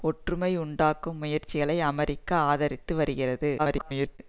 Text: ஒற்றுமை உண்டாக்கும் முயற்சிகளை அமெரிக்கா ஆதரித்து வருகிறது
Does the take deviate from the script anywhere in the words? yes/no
yes